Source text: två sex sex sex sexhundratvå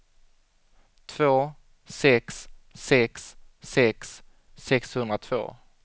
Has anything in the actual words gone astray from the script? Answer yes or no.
no